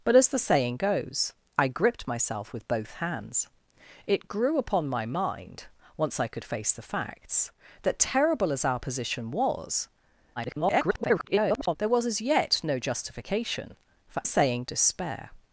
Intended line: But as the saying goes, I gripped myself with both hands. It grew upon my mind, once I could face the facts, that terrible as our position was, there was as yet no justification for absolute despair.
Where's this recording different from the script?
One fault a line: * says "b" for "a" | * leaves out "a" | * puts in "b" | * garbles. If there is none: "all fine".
* garbles
* says "saying" for "absolute"